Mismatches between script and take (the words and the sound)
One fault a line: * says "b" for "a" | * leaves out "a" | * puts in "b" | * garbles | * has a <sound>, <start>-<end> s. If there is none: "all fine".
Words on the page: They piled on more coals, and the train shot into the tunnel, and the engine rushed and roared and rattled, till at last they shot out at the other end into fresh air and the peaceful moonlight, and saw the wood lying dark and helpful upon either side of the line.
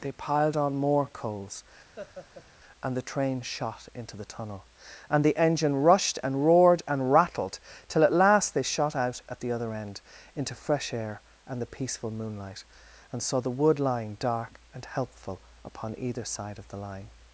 * has a laugh, 2.0-2.5 s